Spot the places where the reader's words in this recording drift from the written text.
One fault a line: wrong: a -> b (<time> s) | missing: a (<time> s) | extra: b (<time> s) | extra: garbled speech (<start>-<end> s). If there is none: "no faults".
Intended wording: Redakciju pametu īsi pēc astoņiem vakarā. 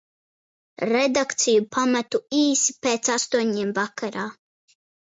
no faults